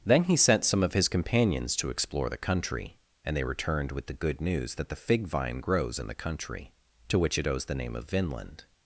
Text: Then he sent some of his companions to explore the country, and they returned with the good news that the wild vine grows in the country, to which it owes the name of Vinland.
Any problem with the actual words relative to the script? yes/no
yes